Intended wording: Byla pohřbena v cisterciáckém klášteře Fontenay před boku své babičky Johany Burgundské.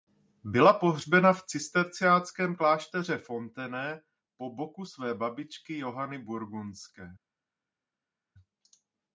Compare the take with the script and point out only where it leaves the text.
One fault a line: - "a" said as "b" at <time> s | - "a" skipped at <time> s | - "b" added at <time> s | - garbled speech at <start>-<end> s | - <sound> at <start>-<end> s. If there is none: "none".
- "před" said as "po" at 4.3 s